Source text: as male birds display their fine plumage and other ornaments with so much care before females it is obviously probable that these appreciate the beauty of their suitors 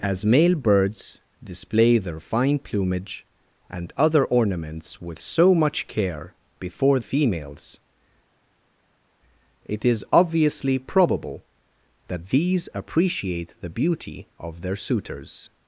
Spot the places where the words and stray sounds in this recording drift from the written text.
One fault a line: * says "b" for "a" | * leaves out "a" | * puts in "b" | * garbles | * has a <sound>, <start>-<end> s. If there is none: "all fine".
all fine